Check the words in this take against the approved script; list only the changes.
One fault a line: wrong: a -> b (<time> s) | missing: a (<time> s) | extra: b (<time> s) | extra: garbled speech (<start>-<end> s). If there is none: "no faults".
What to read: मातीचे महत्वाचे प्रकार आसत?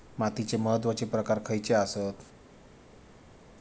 extra: खयचे (1.4 s)